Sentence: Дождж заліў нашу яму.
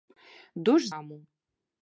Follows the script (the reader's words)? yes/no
no